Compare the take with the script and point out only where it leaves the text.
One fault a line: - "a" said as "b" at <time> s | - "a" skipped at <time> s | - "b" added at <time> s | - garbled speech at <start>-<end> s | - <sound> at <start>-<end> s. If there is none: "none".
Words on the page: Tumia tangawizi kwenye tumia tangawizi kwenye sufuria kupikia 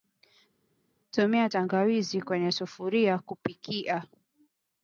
- "tumia tangawizi kwenye" skipped at 2.5 s